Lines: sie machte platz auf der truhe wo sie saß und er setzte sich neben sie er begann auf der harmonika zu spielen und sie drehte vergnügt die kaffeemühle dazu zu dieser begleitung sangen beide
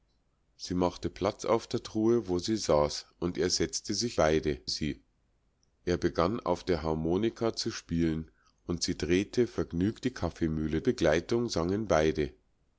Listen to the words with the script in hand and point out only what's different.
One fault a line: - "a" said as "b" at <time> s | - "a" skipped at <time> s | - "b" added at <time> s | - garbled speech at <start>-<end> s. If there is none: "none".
- "neben" said as "beide" at 4.1 s
- "dazu zu dieser" skipped at 10.8 s